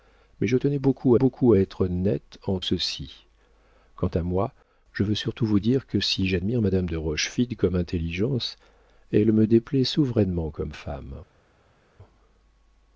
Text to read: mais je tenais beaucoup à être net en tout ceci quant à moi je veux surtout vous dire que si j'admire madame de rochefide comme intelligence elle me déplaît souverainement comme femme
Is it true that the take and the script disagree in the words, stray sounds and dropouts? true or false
true